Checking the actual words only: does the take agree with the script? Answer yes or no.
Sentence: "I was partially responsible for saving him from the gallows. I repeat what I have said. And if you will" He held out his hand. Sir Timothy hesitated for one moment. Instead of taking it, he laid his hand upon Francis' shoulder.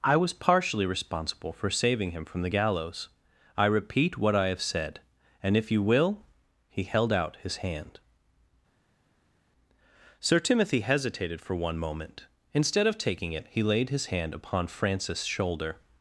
yes